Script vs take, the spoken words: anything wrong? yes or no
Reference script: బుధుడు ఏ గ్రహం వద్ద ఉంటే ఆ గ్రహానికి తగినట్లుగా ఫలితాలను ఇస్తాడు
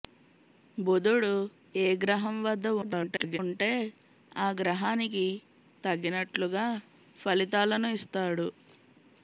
yes